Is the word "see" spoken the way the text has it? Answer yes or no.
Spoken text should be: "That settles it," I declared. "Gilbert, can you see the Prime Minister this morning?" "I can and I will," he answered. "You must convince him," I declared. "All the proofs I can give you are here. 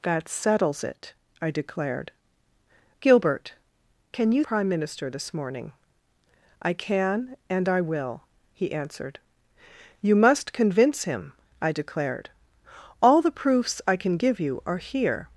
no